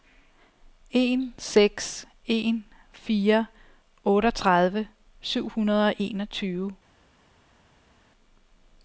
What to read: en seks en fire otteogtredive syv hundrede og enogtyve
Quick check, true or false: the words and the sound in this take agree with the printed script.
true